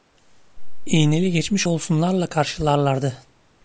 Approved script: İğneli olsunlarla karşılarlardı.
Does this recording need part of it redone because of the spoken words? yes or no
yes